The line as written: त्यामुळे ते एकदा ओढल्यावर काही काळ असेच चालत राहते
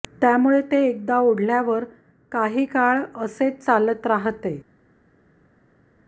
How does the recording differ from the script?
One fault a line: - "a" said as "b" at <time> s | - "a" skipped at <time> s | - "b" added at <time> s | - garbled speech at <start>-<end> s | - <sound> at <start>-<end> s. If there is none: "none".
none